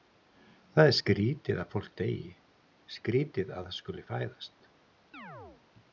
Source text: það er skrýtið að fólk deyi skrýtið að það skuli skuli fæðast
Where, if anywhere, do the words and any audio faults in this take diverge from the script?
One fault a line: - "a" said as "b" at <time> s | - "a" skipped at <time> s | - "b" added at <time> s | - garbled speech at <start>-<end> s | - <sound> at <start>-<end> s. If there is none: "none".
- "skuli" skipped at 4.1 s
- chirp at 5.1-5.6 s